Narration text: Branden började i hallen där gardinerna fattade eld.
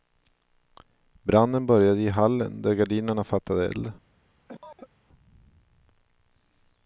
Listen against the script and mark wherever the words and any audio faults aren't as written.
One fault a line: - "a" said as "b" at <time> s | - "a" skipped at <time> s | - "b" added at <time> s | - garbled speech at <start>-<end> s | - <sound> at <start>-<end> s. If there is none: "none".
- cough at 4.5-4.9 s